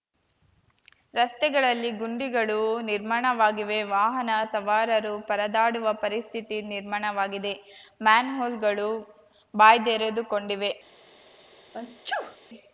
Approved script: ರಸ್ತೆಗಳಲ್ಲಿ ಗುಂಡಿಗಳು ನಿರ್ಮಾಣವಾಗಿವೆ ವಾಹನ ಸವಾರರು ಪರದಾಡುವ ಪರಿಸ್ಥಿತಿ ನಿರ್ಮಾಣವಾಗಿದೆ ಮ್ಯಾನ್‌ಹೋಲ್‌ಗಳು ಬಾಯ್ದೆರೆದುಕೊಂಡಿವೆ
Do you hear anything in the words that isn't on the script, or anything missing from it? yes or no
no